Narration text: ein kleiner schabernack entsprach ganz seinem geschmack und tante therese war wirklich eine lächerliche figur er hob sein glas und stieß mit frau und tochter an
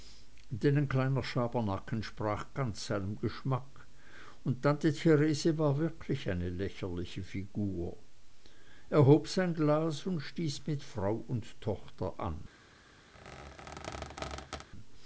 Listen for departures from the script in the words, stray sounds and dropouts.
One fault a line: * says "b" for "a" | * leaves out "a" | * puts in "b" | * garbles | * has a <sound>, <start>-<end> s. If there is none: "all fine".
* has a squeak, 13.1-14.7 s